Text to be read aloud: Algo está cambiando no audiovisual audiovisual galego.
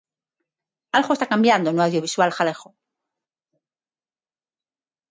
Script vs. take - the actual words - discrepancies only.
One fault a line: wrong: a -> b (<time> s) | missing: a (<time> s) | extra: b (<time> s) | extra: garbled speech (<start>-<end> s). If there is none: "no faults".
missing: audiovisual (2.3 s)